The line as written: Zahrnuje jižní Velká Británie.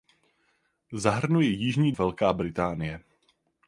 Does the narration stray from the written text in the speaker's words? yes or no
no